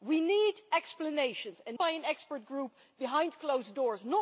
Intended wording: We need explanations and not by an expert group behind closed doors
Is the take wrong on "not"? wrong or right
wrong